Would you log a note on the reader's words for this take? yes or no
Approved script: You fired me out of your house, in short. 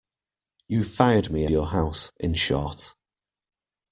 yes